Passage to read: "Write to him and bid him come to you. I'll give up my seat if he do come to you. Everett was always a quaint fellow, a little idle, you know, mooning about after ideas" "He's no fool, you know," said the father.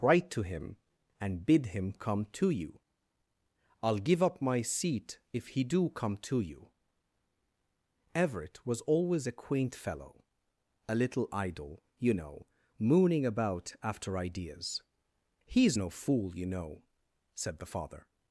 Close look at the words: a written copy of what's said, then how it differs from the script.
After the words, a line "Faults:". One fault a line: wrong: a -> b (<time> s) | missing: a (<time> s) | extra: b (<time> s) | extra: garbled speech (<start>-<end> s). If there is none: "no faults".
"Write to him and bid him come to you. I'll give up my seat if he do come to you. Everett was always a quaint fellow, a little idle, you know, mooning about after ideas" "He's no fool, you know," said the father.
Faults:
no faults